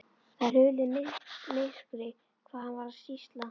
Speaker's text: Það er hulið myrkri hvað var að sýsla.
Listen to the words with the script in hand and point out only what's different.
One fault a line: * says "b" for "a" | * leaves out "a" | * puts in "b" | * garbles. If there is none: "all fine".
* puts in "hann"